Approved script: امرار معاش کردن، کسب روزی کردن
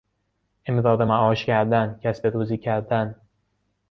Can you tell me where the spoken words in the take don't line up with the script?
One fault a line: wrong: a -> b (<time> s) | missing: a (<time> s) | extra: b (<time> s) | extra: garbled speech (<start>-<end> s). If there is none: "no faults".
no faults